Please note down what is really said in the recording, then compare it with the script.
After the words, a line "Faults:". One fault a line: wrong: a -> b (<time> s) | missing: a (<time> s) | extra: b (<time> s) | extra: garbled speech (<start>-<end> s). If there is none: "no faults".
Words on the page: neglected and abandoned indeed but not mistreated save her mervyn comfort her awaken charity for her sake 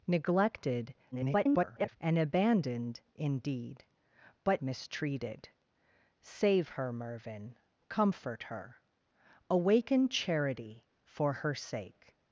neglected [garbled] and abandoned indeed but mistreated save her mervyn comfort her awaken charity for her sake
Faults:
extra: garbled speech (1.1-2.0 s)
missing: not (4.6 s)